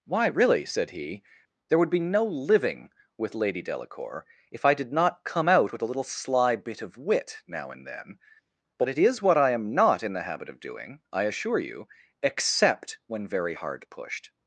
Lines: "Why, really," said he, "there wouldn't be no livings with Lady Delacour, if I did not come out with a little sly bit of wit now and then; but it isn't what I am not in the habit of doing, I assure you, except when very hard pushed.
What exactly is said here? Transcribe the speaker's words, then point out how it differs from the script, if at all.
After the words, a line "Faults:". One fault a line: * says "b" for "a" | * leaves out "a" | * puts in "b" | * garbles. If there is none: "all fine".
"Why, really," said he, "there would be no living with Lady Delacour, if I did not come out with a little sly bit of wit now and then; but it is what I am not in the habit of doing, I assure you, except when very hard pushed.
Faults:
* says "would" for "wouldn't"
* says "living" for "livings"
* says "is" for "isn't"